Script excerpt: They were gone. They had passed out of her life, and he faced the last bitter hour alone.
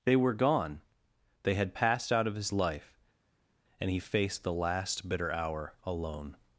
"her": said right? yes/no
no